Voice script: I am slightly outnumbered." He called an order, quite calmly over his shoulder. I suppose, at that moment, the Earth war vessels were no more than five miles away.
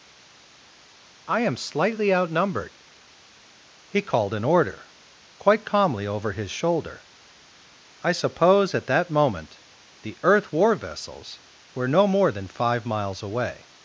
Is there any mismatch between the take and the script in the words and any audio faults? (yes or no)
no